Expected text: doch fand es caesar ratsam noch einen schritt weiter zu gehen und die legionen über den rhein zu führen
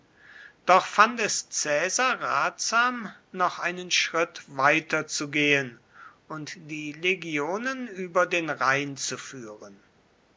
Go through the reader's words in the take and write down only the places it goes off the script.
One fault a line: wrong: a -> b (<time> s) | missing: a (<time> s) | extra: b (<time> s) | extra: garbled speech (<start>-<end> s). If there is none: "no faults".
no faults